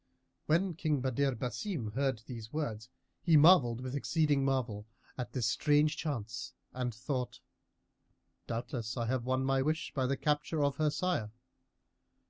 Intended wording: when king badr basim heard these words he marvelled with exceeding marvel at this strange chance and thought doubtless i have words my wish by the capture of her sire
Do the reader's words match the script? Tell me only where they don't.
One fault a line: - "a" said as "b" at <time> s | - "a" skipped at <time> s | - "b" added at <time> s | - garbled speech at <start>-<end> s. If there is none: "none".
- "words" said as "won" at 9.2 s